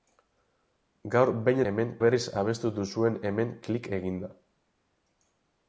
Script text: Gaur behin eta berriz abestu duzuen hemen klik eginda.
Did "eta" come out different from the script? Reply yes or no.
yes